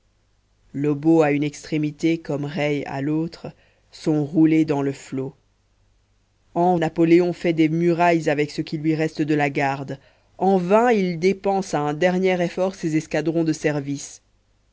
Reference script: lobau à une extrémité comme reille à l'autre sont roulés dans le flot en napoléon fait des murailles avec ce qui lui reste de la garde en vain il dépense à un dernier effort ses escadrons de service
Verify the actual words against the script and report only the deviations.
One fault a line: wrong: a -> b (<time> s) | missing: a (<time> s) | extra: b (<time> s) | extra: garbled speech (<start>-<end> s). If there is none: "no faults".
no faults